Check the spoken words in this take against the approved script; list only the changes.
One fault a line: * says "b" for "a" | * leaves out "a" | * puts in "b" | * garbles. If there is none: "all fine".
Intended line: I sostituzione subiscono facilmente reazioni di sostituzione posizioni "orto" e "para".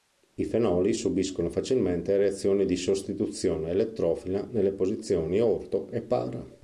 * says "fenoli" for "sostituzione"
* puts in "elettrofila nelle"